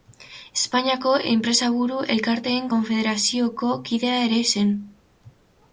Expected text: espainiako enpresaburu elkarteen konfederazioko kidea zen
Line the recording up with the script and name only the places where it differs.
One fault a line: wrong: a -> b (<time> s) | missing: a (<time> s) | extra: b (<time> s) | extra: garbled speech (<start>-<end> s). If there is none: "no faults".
extra: ere (4.3 s)